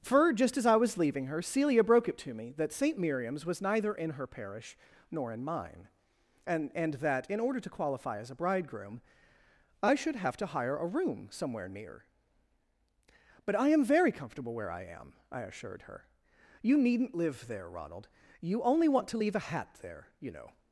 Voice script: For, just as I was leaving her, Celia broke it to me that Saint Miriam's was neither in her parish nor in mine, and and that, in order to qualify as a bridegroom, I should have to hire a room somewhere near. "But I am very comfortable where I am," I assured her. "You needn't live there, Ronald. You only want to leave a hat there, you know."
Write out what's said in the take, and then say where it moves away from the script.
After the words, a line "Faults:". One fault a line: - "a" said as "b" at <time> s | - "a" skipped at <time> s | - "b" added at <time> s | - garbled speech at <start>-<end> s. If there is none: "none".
For, just as I was leaving her, Celia broke it to me that Saint Miriam's was neither in her parish nor in mine, and and that, in order to qualify as a bridegroom, I should have to hire a room somewhere near. "But I am very comfortable where I am," I assured her. "You needn't live there, Ronald. You only want to leave a hat there, you know."
Faults:
none